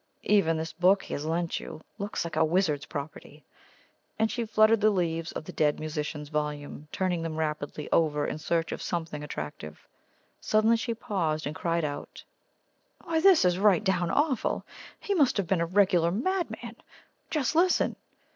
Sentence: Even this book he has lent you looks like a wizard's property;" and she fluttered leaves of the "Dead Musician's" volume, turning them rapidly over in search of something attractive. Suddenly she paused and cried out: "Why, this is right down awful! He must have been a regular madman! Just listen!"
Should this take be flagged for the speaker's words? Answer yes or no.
yes